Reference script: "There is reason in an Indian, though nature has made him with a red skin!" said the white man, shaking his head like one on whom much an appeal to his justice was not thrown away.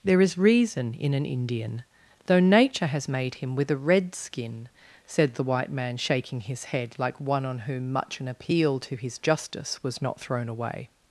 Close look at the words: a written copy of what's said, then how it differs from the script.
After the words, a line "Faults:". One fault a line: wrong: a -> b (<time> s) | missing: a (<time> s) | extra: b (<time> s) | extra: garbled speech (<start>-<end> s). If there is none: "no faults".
"There is reason in an Indian, though nature has made him with a red skin!" said the white man, shaking his head like one on whom much an appeal to his justice was not thrown away.
Faults:
no faults